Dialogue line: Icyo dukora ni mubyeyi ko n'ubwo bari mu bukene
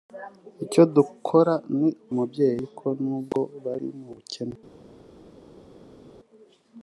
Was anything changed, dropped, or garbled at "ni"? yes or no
no